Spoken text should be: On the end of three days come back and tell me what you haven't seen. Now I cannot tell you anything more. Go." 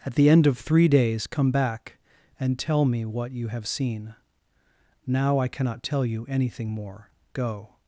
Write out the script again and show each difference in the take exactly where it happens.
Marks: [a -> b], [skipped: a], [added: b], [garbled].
[On -> At] the end of three days come back and tell me what you [haven't -> have] seen. Now I cannot tell you anything more. Go."